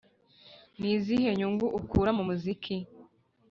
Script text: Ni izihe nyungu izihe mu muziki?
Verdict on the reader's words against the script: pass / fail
fail